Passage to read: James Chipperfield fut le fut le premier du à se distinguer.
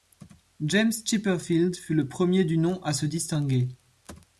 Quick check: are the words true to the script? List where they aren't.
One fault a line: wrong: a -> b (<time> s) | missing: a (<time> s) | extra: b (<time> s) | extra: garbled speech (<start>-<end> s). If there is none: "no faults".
missing: fut le (2.1 s)
extra: nom (2.6 s)